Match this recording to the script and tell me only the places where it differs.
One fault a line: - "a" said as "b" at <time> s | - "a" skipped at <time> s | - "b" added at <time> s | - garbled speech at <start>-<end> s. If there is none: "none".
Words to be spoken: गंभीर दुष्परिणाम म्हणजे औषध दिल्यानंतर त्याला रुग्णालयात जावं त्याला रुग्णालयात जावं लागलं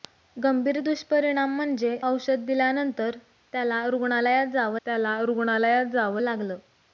none